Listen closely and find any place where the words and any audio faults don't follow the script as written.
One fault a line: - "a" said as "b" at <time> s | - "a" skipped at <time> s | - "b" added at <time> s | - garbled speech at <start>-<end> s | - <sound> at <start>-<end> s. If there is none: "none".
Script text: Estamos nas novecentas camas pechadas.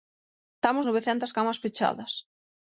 - "nas" skipped at 0.8 s